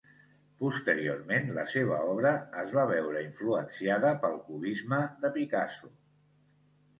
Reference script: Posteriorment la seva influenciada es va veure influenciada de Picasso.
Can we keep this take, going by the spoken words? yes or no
no